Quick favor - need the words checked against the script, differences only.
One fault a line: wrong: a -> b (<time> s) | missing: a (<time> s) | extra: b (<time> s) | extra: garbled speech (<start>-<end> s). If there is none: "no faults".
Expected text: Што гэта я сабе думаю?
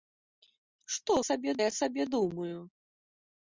wrong: гэта -> сабе (1.3 s)